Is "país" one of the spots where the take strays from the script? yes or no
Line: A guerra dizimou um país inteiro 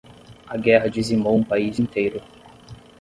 no